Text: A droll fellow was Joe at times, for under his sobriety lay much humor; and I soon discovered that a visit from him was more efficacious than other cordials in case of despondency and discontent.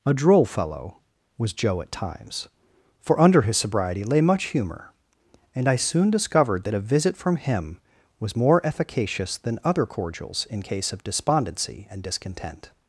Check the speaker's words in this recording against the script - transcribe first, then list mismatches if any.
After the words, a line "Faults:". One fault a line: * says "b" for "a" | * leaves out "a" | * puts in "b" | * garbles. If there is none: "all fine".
A droll fellow was Joe at times, for under his sobriety lay much humor; and I soon discovered that a visit from him was more efficacious than other cordials in case of despondency and discontent.
Faults:
all fine